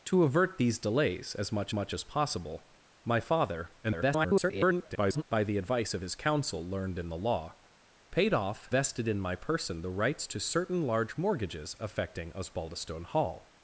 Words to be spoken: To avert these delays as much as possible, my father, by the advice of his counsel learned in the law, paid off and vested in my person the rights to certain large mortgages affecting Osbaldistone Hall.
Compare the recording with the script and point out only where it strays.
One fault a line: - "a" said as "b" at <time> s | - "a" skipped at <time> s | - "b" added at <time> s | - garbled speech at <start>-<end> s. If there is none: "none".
- "much" added at 1.7 s
- garbled speech at 3.8-5.2 s
- "and" skipped at 8.7 s